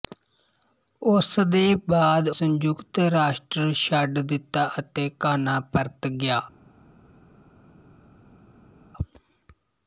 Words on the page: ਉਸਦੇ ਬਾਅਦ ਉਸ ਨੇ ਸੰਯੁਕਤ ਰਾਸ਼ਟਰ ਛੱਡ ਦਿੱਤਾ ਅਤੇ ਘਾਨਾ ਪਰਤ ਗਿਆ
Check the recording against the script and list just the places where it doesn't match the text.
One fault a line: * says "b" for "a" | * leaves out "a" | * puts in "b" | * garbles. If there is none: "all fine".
* leaves out "ਉਸ ਨੇ"